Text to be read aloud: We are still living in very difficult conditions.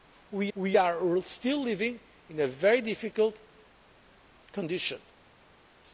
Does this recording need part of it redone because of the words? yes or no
yes